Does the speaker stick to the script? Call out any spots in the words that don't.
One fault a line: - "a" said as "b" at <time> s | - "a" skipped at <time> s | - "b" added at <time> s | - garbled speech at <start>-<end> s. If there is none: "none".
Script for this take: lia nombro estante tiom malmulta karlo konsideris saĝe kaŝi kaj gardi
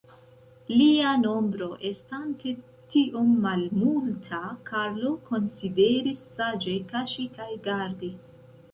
none